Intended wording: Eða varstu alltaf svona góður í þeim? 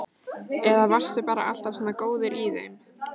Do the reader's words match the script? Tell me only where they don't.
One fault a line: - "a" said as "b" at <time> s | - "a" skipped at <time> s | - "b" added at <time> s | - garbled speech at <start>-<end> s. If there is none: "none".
- "bara" added at 1.3 s